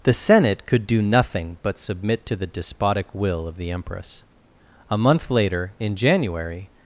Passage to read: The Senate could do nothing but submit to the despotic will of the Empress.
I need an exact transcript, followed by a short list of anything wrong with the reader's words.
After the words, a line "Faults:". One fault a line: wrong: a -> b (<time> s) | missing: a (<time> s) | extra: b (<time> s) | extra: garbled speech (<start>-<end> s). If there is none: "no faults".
The Senate could do nothing but submit to the despotic will of the Empress. A month later, in January
Faults:
extra: A month later in January (4.9 s)